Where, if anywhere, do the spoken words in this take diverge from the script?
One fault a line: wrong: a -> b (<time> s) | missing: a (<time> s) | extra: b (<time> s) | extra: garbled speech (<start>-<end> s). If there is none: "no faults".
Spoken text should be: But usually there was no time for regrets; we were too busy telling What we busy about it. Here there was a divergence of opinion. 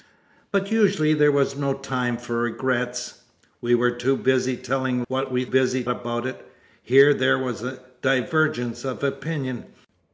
no faults